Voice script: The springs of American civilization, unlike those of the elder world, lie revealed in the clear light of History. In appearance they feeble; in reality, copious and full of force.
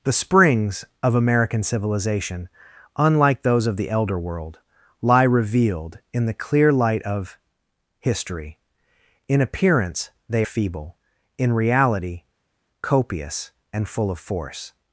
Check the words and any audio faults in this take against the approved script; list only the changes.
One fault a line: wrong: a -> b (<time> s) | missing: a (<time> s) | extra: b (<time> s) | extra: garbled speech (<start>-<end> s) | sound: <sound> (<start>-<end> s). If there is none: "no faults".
no faults